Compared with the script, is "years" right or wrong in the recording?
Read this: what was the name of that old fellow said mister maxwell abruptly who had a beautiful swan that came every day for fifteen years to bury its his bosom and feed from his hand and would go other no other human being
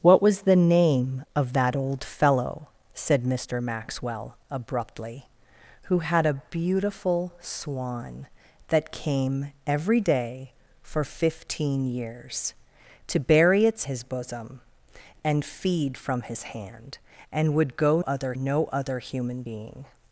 right